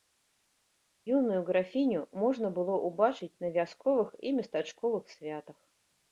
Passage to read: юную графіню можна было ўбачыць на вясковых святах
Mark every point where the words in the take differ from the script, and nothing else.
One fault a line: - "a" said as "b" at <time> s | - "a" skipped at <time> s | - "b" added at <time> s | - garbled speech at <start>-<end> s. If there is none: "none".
- "і местачковых" added at 4.2 s